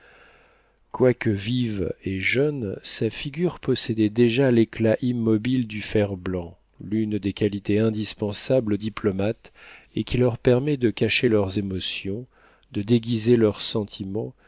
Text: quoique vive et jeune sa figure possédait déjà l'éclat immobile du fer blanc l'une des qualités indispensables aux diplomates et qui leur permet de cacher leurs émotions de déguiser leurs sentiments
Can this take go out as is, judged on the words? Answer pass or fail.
pass